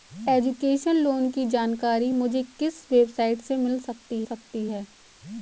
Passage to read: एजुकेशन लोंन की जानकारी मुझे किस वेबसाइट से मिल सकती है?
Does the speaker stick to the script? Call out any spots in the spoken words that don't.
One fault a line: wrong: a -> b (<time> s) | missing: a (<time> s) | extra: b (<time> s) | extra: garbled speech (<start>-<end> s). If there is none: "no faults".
extra: सकती (4.2 s)